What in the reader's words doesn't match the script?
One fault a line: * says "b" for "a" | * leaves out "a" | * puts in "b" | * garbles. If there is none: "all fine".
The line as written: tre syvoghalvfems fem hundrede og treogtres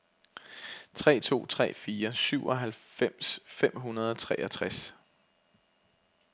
* puts in "to tre fire"